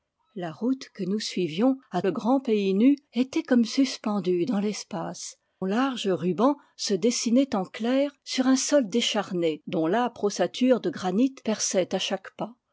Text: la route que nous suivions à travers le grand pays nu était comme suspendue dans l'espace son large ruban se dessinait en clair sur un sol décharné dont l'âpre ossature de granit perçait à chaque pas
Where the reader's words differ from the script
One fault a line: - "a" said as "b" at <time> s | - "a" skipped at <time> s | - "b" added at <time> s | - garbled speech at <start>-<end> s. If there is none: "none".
- "travers" skipped at 2.0 s
- "son" skipped at 5.4 s